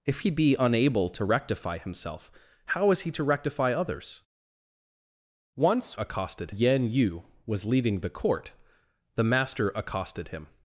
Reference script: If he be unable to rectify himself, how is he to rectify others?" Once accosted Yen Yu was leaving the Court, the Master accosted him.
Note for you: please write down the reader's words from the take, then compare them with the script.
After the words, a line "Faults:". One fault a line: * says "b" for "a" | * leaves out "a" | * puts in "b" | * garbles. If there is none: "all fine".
If he be unable to rectify himself, how is he to rectify others?" Once accosted Yen Yu was leaving the Court, the Master accosted him.
Faults:
all fine